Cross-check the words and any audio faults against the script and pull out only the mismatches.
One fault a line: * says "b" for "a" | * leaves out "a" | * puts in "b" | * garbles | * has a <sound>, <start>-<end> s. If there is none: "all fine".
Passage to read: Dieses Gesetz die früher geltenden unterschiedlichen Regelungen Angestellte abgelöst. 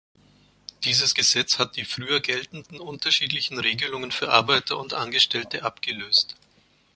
* puts in "hat"
* puts in "für Arbeiter und"